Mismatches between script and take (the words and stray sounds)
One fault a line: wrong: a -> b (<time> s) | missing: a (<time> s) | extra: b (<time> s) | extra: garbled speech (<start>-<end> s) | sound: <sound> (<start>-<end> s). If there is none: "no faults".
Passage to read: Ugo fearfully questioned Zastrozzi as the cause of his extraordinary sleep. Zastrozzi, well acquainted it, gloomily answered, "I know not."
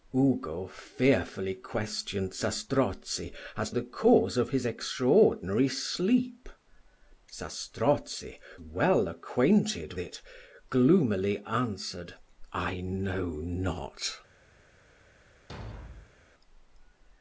sound: thud (15.5-16.2 s)